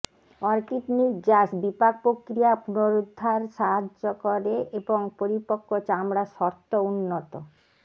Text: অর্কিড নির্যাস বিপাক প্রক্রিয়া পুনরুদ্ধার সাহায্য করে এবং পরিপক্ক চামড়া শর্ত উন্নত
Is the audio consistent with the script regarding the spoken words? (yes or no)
yes